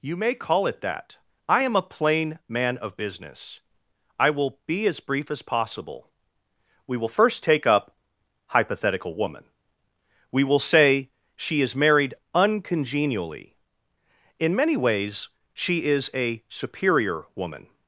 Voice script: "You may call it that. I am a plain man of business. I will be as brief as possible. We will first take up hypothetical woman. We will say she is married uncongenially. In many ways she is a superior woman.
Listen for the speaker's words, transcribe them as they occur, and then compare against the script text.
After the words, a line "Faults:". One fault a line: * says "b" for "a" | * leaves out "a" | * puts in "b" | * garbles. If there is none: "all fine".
"You may call it that. I am a plain man of business. I will be as brief as possible. We will first take up hypothetical woman. We will say she is married uncongenially. In many ways she is a superior woman.
Faults:
all fine